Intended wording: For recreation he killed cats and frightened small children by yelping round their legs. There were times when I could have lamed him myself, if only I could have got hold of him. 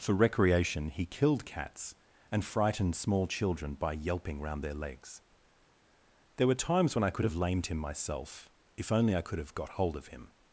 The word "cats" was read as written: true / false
true